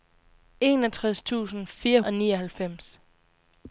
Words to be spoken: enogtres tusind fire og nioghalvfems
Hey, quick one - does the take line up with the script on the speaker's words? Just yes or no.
yes